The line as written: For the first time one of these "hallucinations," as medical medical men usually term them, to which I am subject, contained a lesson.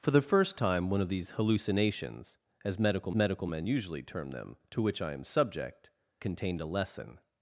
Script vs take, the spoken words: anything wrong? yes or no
no